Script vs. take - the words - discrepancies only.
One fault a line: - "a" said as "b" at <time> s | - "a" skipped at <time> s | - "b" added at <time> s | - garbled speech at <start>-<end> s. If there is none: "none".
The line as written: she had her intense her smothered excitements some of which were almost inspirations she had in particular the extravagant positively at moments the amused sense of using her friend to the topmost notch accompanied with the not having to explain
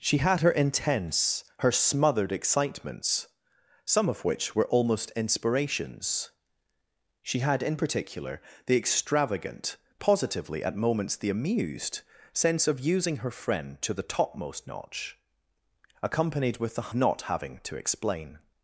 none